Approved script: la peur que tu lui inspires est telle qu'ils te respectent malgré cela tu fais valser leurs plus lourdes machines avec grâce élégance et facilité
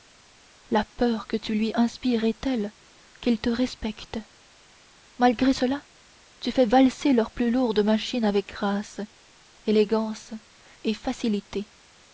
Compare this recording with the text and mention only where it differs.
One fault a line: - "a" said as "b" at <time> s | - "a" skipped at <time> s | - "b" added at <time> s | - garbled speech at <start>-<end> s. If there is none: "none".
none